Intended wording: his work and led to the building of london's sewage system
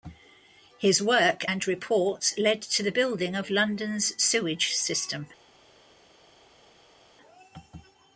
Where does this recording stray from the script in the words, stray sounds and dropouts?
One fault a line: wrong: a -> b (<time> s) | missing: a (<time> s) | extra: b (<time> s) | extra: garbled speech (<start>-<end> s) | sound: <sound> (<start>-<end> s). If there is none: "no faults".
extra: reports (1.7 s)